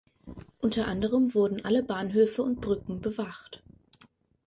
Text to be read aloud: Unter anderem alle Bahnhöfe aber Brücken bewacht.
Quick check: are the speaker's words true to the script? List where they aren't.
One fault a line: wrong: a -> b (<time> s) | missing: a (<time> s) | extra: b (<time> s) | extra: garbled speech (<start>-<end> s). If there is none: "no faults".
extra: wurden (1.4 s)
wrong: aber -> und (2.4 s)